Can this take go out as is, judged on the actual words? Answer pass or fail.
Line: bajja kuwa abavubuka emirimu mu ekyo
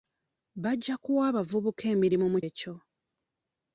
pass